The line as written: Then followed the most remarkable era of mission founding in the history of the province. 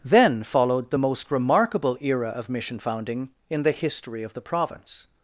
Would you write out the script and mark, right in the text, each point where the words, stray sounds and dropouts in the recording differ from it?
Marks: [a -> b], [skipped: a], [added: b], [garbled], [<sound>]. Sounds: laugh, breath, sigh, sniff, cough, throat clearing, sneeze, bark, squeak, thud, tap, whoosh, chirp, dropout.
Then followed the most remarkable era of mission founding in the history of the province.